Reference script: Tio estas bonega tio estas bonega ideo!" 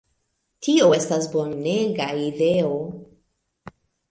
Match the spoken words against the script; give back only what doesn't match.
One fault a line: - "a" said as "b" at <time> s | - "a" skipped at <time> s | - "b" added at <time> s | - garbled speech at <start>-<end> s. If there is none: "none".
- "tio estas bonega" skipped at 2.1 s